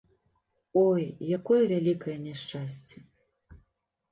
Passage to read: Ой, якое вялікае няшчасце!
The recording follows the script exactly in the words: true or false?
true